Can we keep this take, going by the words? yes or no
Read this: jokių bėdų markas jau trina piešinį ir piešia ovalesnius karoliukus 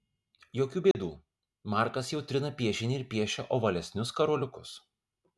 yes